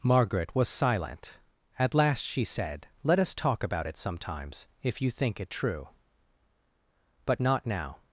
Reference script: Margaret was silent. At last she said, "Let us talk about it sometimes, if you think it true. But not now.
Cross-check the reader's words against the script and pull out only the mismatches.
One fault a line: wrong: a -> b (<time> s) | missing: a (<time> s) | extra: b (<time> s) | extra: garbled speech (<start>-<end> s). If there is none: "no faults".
no faults